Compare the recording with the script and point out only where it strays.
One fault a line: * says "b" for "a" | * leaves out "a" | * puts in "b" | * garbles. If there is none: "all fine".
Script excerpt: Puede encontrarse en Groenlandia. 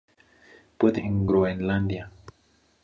* leaves out "encontrarse"